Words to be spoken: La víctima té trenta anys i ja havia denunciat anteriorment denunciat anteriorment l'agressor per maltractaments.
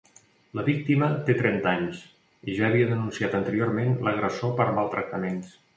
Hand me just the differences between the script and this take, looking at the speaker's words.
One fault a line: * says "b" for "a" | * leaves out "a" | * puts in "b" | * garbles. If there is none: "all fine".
* leaves out "denunciat anteriorment"